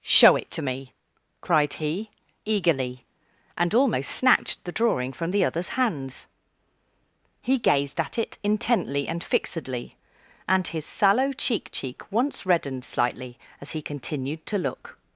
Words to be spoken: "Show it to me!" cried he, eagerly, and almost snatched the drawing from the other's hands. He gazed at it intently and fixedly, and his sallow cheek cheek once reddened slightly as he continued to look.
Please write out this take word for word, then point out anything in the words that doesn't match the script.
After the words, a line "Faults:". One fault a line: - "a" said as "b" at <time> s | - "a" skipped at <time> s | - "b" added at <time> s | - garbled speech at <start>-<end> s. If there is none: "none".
"Show it to me!" cried he, eagerly, and almost snatched the drawing from the other's hands. He gazed at it intently and fixedly, and his sallow cheek cheek once reddened slightly as he continued to look.
Faults:
none